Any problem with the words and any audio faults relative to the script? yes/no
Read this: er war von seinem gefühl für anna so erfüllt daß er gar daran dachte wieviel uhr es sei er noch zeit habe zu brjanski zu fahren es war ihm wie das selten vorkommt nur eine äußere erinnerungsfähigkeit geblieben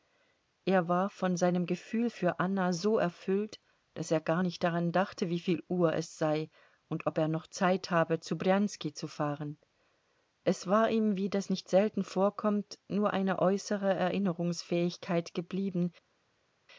yes